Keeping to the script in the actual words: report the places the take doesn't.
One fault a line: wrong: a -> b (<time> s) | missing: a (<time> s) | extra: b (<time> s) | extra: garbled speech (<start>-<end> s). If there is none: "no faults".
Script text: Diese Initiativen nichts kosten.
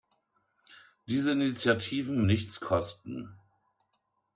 no faults